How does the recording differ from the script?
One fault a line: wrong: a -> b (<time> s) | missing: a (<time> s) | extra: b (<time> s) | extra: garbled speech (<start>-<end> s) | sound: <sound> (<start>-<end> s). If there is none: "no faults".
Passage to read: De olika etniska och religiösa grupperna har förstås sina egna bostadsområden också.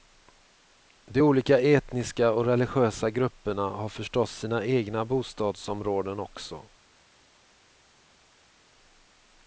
no faults